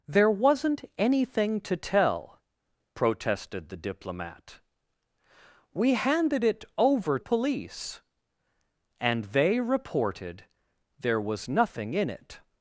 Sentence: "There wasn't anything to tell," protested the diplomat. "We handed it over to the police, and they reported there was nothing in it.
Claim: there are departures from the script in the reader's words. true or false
true